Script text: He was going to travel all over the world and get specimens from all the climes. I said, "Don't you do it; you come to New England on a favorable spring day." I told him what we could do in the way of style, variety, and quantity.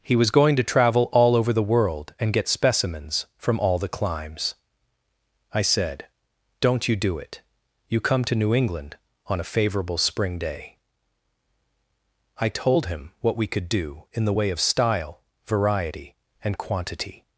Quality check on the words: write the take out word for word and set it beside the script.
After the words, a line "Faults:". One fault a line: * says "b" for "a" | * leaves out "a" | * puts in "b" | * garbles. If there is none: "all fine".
He was going to travel all over the world and get specimens from all the climes. I said, "Don't you do it; you come to New England on a favorable spring day." I told him what we could do in the way of style, variety, and quantity.
Faults:
all fine